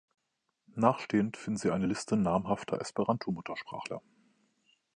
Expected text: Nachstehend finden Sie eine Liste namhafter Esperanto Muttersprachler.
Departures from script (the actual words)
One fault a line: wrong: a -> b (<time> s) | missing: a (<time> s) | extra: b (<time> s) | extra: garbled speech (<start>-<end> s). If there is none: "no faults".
no faults